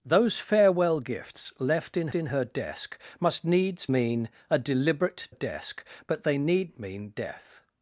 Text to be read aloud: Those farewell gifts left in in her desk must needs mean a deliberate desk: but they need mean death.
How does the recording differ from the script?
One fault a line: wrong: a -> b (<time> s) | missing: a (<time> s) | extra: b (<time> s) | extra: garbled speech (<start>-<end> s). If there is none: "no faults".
no faults